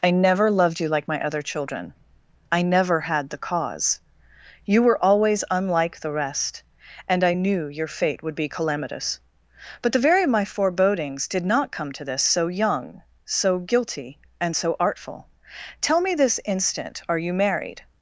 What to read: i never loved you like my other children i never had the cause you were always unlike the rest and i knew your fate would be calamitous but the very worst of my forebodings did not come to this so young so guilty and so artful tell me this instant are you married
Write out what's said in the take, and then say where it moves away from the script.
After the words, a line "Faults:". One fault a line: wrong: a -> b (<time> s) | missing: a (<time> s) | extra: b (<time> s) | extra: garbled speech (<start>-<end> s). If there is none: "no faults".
i never loved you like my other children i never had the cause you were always unlike the rest and i knew your fate would be calamitous but the very of my forebodings did not come to this so young so guilty and so artful tell me this instant are you married
Faults:
missing: worst (10.2 s)